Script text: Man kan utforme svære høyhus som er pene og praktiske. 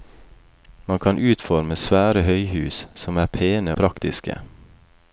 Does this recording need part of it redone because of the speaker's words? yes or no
yes